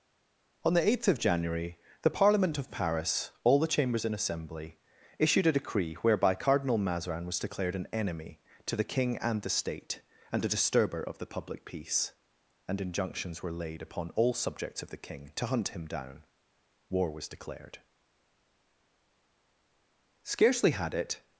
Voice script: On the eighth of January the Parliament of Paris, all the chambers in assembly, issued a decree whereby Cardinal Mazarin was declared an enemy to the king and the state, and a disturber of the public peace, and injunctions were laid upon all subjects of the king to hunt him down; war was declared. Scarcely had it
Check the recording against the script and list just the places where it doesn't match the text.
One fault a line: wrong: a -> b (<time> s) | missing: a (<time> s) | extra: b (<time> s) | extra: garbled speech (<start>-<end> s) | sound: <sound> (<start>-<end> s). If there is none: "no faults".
no faults